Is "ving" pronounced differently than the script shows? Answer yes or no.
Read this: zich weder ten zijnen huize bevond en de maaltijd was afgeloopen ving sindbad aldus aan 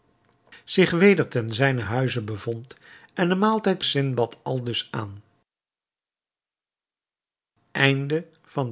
yes